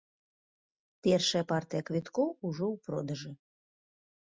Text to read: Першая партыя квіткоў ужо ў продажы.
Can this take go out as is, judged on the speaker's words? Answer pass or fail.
pass